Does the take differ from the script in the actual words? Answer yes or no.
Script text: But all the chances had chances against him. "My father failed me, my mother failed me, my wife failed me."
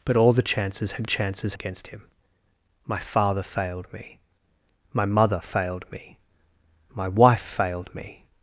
no